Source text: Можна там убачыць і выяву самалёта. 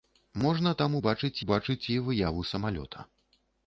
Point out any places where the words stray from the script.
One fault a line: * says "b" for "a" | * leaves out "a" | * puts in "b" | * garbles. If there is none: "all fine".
* puts in "убачыць"